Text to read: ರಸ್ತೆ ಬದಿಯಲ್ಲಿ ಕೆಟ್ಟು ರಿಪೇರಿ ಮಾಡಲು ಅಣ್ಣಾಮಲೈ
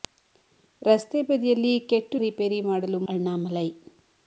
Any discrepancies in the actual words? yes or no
no